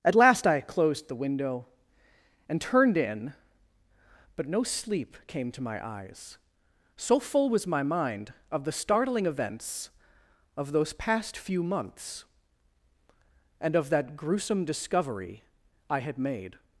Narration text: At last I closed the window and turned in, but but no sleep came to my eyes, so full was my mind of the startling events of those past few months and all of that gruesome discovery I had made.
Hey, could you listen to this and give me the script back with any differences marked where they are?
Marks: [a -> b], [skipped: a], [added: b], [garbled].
At last I closed the window and turned in, but [skipped: but] no sleep came to my eyes, so full was my mind of the startling events of those past few months and [skipped: all] of that gruesome discovery I had made.